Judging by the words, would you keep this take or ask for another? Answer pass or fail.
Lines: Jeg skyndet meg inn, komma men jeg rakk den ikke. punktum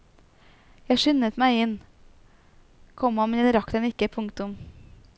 pass